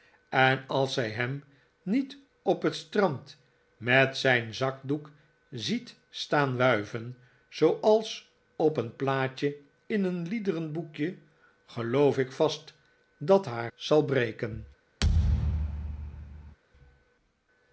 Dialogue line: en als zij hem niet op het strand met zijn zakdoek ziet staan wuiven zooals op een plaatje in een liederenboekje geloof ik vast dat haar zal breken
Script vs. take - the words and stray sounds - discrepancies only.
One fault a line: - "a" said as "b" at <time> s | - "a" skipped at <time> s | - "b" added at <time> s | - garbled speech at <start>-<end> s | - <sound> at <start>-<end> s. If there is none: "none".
- thud at 15.0-16.6 s